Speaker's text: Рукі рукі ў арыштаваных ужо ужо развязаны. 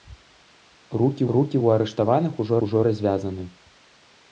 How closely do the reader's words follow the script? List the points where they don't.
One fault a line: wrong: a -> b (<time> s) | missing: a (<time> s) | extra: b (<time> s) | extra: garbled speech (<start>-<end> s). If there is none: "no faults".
no faults